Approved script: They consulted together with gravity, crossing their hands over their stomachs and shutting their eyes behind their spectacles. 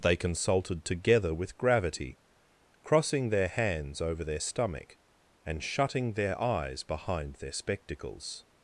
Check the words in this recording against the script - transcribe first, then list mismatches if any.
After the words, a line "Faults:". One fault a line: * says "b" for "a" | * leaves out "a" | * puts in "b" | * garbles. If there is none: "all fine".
They consulted together with gravity, crossing their hands over their stomach and shutting their eyes behind their spectacles.
Faults:
* says "stomach" for "stomachs"